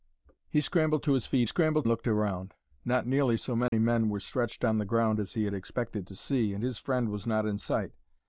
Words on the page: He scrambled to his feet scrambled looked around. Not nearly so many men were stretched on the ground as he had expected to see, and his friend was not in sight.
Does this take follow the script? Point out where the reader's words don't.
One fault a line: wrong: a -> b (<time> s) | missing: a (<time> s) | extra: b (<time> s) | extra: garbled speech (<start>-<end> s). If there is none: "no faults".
no faults